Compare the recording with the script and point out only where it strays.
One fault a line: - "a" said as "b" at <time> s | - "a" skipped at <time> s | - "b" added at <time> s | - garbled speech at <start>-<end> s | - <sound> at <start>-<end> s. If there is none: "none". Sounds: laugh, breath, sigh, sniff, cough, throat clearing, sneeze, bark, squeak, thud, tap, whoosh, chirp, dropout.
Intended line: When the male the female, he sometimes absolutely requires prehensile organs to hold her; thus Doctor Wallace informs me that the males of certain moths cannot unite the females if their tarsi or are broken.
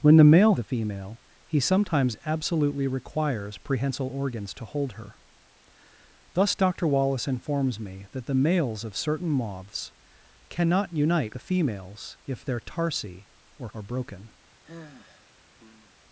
- sigh at 14.6-15.9 s